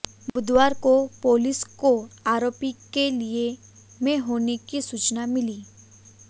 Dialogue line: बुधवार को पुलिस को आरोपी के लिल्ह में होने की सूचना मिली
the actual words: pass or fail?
pass